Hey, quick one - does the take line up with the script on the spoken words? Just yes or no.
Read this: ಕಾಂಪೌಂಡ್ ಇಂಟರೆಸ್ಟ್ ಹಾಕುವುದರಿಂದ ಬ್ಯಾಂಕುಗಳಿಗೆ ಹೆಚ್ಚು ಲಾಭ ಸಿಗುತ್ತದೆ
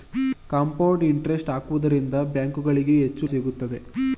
no